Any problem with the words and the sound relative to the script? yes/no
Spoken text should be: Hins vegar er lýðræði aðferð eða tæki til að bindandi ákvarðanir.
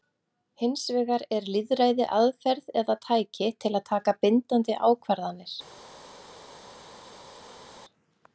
yes